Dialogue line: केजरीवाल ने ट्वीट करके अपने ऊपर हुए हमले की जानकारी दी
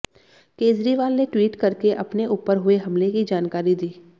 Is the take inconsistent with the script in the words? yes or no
no